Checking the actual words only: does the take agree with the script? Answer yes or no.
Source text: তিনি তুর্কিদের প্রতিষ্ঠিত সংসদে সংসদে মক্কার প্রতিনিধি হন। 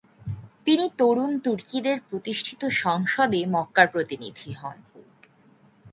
no